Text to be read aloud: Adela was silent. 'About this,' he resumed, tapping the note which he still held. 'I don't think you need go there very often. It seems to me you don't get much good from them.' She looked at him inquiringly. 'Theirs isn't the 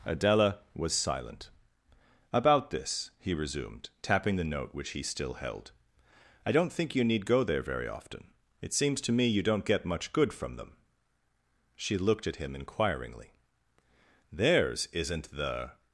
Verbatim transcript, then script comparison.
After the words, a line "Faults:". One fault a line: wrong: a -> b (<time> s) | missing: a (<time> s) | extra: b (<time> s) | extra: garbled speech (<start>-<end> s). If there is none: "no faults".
Adela was silent. 'About this,' he resumed, tapping the note which he still held. 'I don't think you need go there very often. It seems to me you don't get much good from them.' She looked at him inquiringly. 'Theirs isn't the
Faults:
no faults